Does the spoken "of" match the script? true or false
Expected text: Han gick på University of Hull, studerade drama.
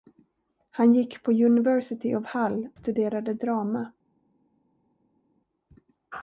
true